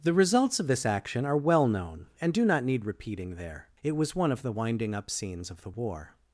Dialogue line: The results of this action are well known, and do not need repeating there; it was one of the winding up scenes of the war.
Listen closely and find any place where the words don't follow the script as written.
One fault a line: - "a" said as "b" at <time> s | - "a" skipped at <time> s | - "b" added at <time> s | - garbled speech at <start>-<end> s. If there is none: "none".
none